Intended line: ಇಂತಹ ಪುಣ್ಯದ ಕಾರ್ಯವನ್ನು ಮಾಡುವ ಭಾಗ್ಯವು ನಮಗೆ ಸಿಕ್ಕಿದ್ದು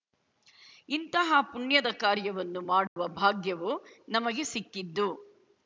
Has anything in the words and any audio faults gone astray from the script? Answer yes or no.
yes